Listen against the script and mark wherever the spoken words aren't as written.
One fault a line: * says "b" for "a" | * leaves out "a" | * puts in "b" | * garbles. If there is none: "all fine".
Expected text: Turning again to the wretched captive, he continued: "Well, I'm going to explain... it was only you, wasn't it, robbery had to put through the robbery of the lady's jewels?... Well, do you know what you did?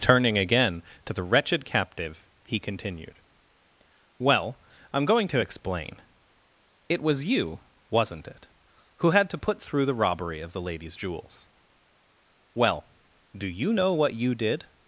* leaves out "only"
* says "who" for "robbery"